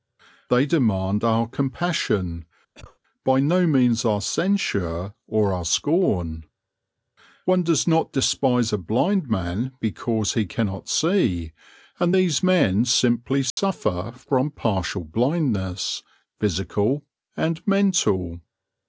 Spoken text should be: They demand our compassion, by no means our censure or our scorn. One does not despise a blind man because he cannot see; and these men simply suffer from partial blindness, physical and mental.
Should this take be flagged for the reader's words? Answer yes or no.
no